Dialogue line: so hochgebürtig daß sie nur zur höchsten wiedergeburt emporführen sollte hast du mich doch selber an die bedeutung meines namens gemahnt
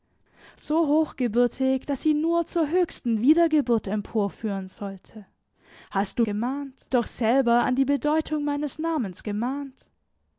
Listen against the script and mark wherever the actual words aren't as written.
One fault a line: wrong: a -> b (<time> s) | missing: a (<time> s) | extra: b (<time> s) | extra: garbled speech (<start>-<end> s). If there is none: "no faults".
wrong: mich -> gemahnt (6.2 s)